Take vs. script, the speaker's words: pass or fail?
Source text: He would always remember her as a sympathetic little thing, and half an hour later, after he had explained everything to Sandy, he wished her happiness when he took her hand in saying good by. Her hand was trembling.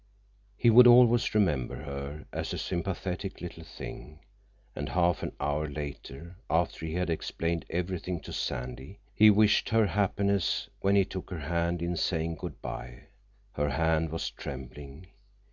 pass